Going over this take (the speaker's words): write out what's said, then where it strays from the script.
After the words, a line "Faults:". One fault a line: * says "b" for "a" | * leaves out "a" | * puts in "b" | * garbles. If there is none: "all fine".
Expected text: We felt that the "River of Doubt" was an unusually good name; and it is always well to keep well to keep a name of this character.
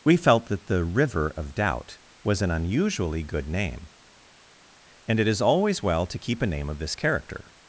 We felt that the "River of Doubt" was an unusually good name; and it is always well to keep a name of this character.
Faults:
* leaves out "well to keep"